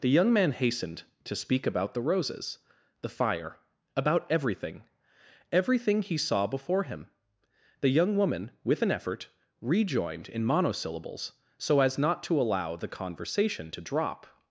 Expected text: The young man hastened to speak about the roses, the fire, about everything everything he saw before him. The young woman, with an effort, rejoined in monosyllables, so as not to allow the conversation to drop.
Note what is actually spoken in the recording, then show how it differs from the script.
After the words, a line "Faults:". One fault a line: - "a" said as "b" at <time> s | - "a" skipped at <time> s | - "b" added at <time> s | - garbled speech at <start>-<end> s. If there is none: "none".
The young man hastened to speak about the roses, the fire, about everything everything he saw before him. The young woman, with an effort, rejoined in monosyllables, so as not to allow the conversation to drop.
Faults:
none